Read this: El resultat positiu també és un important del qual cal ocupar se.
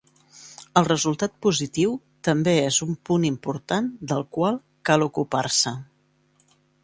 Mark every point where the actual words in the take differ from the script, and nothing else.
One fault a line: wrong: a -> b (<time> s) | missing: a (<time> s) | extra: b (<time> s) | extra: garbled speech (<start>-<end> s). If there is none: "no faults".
extra: punt (3.1 s)